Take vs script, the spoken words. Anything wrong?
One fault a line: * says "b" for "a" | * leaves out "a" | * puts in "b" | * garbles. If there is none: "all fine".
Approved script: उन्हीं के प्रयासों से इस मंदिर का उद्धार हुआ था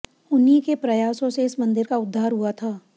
all fine